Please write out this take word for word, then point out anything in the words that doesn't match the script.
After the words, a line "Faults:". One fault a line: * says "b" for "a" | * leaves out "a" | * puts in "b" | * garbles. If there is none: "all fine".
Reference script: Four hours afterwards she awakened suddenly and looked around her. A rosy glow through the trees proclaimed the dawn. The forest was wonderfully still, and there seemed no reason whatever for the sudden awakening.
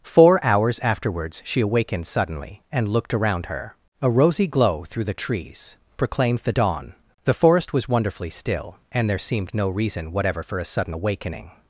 Four hours afterwards she awakened suddenly and looked around her. A rosy glow through the trees proclaimed the dawn. The forest was wonderfully still, and there seemed no reason whatever for a sudden awakening.
Faults:
* says "a" for "the"